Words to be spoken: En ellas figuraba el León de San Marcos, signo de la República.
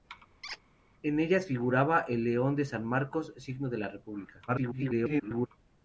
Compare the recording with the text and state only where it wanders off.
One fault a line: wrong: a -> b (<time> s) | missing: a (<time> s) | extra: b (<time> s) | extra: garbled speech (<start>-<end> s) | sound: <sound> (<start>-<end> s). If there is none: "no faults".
sound: squeak (0.4-0.6 s)
extra: garbled speech (4.5-5.5 s)